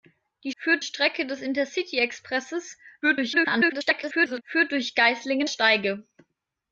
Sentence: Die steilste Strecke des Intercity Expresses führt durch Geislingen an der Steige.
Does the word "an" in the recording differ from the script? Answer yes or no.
yes